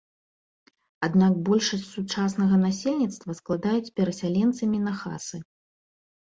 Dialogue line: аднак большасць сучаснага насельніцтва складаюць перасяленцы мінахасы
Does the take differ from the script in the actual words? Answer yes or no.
no